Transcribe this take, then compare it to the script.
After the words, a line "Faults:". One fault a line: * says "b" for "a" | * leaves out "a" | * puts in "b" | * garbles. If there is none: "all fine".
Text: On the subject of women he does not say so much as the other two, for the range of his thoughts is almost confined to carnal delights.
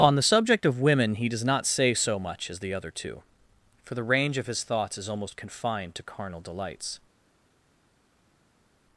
On the subject of women he does not say so much as the other two, for the range of his thoughts is almost confined to carnal delights.
Faults:
all fine